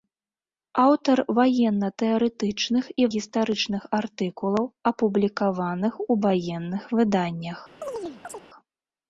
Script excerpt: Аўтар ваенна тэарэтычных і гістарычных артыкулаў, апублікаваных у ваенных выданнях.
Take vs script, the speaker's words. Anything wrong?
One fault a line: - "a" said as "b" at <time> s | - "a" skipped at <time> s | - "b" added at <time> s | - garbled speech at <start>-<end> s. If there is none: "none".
none